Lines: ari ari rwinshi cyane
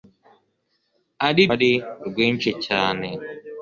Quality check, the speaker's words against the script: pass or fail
pass